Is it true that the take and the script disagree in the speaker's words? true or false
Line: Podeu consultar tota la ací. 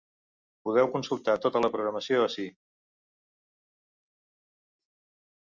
true